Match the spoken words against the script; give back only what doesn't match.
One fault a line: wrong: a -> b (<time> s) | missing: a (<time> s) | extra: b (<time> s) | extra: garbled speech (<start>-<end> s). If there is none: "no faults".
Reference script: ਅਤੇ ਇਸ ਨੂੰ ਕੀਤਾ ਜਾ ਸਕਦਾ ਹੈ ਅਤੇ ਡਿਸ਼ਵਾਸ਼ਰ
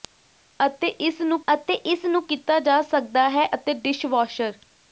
extra: ਅਤੇ ਇਸ ਨੂੰ (1.5 s)